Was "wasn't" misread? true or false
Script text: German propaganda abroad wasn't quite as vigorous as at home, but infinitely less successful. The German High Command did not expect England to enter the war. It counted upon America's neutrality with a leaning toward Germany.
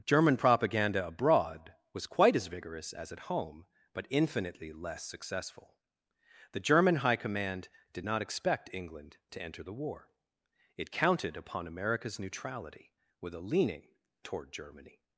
true